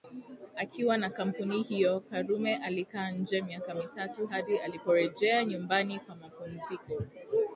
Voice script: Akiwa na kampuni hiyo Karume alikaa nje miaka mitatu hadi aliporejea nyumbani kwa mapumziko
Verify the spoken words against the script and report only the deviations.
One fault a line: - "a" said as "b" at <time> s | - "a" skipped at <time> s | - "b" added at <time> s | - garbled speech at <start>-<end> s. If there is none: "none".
none